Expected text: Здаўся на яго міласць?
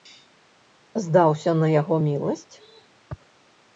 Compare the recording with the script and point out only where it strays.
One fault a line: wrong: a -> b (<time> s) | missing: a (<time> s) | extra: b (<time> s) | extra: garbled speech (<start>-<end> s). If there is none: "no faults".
no faults